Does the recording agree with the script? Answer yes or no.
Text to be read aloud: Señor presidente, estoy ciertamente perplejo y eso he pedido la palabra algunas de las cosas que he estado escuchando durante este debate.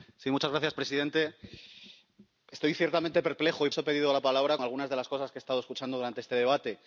yes